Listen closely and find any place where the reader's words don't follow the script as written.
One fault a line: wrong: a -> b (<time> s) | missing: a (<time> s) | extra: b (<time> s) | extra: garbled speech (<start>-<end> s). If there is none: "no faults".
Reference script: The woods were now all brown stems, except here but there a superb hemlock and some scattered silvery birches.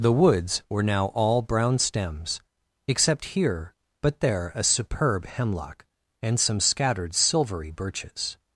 no faults